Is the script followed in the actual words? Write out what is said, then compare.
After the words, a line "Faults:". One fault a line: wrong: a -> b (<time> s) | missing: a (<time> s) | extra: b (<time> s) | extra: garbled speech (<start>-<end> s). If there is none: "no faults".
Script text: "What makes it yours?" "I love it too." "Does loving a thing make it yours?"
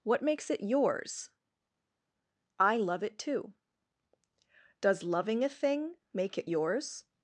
"What makes it yours?" "I love it too." "Does loving a thing make it yours?"
Faults:
no faults